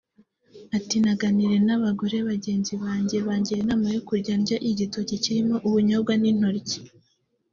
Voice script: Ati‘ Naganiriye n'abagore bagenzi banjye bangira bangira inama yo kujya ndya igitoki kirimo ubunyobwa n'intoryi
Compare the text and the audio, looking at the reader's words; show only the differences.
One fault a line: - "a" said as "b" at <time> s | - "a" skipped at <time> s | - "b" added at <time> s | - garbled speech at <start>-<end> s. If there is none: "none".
- "bangira" skipped at 3.6 s